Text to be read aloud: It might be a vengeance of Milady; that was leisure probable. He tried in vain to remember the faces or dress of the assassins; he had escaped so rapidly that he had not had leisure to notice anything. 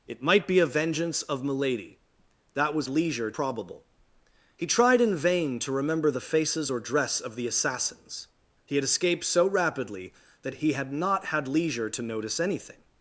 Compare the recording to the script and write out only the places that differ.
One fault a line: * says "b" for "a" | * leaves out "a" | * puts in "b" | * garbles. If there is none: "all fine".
all fine